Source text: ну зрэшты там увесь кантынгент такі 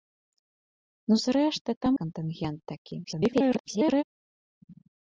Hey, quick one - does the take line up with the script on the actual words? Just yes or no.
no